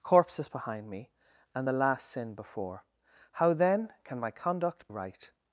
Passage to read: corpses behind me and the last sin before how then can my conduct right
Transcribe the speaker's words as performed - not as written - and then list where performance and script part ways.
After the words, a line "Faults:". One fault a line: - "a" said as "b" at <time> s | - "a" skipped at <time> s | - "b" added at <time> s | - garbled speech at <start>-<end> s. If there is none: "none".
corpses behind me and the last sin before how then can my conduct right
Faults:
none